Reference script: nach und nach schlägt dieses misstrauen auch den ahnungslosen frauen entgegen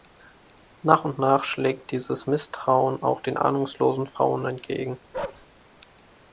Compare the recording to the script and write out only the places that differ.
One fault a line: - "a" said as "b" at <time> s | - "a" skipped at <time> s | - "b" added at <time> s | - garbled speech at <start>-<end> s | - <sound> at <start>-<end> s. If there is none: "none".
- bark at 5.1-5.5 s